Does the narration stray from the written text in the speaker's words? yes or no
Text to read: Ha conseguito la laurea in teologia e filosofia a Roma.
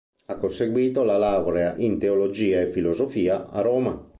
no